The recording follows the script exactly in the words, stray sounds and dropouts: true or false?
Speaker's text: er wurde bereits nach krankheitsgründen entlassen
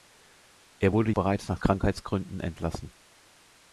true